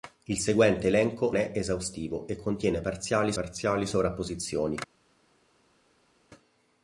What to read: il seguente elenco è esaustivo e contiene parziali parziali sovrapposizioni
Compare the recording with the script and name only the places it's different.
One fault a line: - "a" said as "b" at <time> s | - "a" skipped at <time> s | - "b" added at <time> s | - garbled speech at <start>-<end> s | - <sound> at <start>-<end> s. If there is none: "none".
none